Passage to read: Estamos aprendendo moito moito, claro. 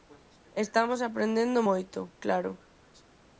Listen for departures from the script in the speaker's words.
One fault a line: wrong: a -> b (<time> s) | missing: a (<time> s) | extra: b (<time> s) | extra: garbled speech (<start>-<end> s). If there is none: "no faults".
missing: moito (2.0 s)